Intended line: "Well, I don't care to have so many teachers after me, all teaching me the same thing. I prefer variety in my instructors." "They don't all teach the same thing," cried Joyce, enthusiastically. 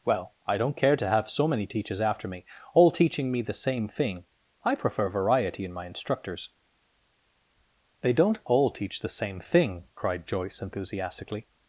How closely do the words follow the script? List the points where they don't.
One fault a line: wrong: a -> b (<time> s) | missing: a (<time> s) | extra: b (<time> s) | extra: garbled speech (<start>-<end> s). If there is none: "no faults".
no faults